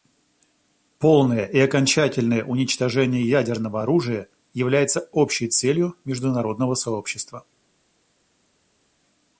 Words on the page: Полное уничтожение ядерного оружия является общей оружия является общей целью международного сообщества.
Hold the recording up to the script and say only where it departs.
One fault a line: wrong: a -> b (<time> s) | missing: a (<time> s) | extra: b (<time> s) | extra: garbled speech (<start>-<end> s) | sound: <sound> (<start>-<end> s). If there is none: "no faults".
extra: и окончательное (1.4 s)
missing: оружия является общей (5.5 s)